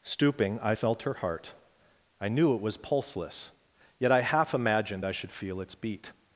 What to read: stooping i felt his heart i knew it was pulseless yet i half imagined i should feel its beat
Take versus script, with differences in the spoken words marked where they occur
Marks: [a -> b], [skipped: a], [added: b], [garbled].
stooping i felt [his -> her] heart i knew it was pulseless yet i half imagined i should feel its beat